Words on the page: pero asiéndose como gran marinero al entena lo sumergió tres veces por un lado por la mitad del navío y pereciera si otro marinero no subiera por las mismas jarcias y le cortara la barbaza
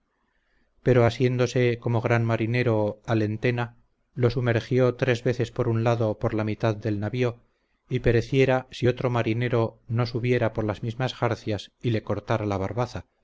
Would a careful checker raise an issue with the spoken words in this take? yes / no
no